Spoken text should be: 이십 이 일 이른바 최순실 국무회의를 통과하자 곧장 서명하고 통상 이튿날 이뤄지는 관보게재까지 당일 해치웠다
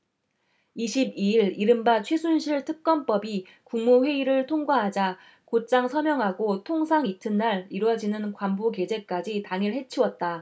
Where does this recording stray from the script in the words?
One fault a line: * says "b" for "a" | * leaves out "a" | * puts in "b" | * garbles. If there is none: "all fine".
* puts in "특검법이"